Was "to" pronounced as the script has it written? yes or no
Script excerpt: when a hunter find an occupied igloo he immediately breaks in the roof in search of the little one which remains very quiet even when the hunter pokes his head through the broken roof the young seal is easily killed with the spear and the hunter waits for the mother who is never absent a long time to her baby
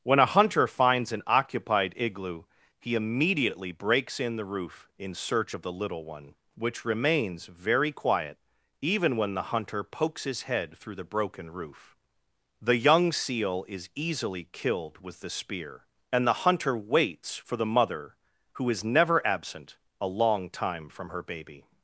no